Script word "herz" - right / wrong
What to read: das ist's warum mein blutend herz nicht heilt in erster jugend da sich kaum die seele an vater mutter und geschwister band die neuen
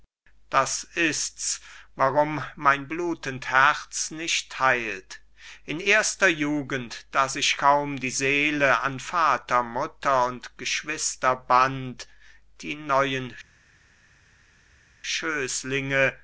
right